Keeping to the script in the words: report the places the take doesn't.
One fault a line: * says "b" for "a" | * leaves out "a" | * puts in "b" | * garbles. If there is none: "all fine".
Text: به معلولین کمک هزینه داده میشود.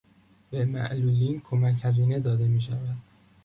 all fine